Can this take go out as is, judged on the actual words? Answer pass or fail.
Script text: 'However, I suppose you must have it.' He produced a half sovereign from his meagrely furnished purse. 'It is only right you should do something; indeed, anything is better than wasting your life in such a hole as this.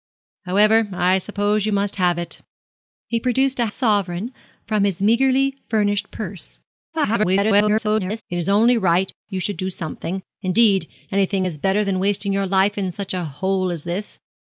fail